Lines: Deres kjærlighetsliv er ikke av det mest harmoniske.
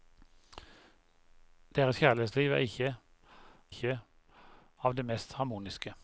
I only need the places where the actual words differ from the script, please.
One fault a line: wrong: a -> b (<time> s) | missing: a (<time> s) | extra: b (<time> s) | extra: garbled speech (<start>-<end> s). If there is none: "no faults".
extra: ikke (3.7 s)